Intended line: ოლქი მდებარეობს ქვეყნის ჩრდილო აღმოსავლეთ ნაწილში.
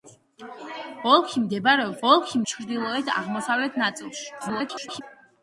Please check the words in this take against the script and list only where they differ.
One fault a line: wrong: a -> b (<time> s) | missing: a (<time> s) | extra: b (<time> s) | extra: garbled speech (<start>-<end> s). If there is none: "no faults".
wrong: ქვეყნის -> ოლქი (2.1 s)
extra: garbled speech (4.4-5.0 s)